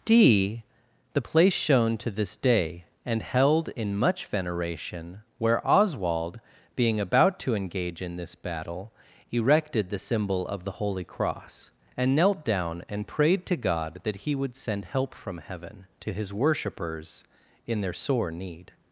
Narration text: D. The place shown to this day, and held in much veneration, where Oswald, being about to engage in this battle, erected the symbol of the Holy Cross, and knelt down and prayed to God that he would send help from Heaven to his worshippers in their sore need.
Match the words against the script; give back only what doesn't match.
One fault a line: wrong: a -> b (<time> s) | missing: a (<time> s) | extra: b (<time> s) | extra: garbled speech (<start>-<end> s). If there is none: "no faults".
no faults